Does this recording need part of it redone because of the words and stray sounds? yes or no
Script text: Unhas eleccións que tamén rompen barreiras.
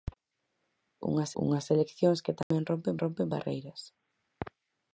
yes